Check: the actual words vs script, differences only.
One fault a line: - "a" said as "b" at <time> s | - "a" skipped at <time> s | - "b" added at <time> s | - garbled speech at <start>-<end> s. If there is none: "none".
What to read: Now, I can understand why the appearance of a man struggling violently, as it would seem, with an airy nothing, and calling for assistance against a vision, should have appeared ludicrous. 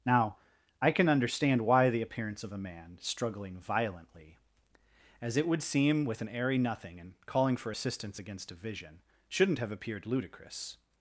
- "should" said as "shouldn't" at 9.3 s